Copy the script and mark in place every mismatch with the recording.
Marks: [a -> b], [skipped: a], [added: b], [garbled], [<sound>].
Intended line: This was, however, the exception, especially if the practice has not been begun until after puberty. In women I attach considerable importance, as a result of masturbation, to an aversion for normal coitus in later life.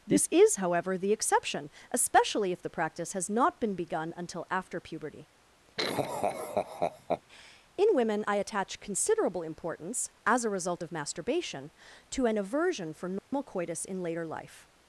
This [was, -> is] however, the exception, especially if the practice has not been begun until after puberty. [laugh] In women I attach considerable importance, as a result of masturbation, to an aversion for normal [dropout] coitus in later life.